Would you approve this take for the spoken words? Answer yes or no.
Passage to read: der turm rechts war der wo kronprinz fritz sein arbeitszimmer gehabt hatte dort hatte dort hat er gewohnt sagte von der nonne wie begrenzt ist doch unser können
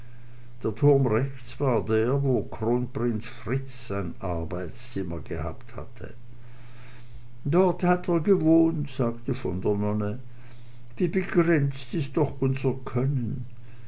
no